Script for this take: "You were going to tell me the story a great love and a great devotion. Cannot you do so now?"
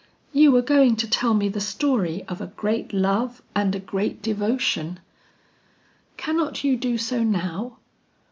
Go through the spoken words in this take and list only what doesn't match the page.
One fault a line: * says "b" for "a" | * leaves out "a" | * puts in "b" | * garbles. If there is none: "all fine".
* puts in "of"